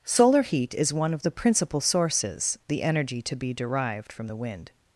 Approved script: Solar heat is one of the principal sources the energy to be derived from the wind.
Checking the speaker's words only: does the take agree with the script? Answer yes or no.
yes